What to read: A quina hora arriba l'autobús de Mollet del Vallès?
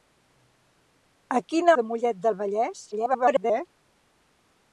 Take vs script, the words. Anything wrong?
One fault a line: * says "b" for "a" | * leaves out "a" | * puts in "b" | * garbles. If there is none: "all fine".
* leaves out "hora arriba l'autobús"
* garbles